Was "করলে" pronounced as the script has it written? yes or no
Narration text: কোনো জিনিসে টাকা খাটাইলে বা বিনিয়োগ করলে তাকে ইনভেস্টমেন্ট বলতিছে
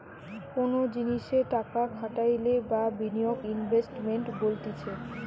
no